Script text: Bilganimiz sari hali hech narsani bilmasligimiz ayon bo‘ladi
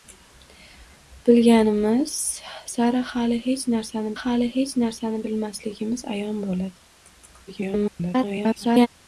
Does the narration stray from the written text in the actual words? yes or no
yes